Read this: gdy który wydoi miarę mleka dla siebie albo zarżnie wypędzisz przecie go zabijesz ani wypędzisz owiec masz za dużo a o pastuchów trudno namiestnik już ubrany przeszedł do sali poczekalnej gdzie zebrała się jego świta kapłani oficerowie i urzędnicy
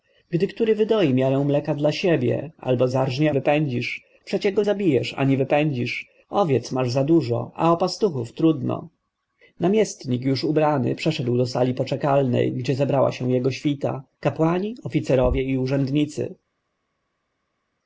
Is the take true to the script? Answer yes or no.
yes